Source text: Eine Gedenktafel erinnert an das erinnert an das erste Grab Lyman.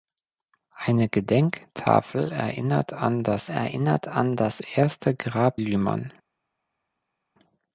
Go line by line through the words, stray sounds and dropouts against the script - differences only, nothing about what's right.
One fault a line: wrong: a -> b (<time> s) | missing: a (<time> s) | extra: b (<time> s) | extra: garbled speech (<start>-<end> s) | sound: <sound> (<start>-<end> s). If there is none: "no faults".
no faults